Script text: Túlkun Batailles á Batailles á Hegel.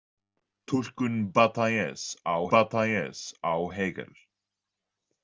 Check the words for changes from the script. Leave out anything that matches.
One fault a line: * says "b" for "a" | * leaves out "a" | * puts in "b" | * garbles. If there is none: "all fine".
all fine